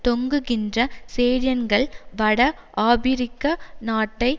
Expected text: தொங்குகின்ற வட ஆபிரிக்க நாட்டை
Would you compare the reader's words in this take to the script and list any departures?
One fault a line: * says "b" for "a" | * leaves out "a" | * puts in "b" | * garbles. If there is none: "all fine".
* puts in "சேடியன்கள்"